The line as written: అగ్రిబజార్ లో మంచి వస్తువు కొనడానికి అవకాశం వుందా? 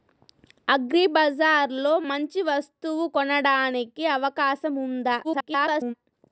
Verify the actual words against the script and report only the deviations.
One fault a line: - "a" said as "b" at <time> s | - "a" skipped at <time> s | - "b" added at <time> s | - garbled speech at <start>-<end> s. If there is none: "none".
- garbled speech at 5.2-5.9 s